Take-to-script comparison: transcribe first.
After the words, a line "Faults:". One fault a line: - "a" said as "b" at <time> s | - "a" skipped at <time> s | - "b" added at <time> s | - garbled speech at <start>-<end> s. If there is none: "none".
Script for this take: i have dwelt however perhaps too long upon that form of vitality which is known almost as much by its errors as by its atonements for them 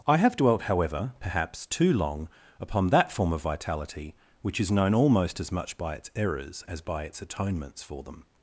i have dwelt however perhaps too long upon that form of vitality which is known almost as much by its errors as by its atonements for them
Faults:
none